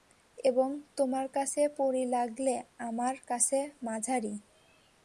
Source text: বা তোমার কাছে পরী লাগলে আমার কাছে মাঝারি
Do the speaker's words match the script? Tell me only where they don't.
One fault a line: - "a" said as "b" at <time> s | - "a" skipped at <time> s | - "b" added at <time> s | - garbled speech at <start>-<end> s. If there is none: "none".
- "বা" said as "এবং" at 0.4 s